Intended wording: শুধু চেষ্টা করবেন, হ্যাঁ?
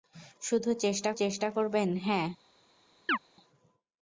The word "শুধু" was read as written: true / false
true